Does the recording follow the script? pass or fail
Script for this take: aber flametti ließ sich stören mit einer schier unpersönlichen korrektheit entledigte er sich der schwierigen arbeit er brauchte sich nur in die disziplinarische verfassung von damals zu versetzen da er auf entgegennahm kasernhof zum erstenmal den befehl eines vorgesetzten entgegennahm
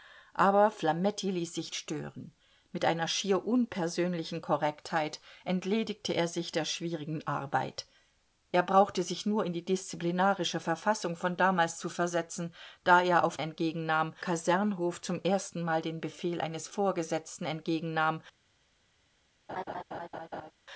pass